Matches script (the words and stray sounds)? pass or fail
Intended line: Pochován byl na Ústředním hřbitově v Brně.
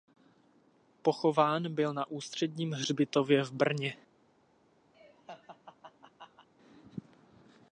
fail